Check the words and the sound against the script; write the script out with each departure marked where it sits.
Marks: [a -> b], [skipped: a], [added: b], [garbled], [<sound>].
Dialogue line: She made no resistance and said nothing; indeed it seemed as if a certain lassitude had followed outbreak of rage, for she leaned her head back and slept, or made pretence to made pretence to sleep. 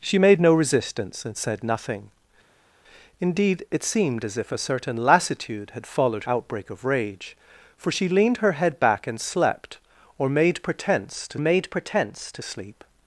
She made no resistance and said nothing; indeed it seemed as if a certain lassitude had followed outbreak of rage, for she leaned her head back and slept, or made pretence to made pretence to sleep.